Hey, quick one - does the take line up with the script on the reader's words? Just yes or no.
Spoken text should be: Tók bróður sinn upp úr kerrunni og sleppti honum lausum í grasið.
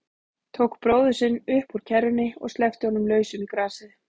yes